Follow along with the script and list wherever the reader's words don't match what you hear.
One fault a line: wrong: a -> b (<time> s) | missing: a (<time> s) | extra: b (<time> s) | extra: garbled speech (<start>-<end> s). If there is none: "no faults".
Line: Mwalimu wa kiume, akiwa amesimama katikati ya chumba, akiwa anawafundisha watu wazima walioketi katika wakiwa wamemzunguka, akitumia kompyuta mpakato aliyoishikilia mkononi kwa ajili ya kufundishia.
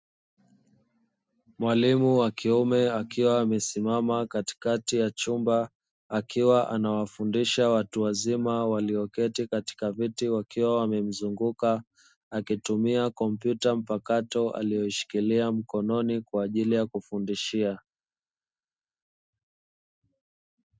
extra: viti (9.9 s)